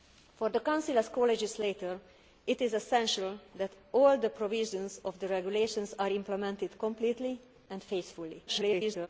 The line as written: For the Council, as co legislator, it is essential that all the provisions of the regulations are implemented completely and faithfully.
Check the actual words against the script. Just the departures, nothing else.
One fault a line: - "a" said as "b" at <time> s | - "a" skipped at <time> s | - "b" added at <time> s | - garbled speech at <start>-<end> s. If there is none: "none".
- garbled speech at 8.5-9.1 s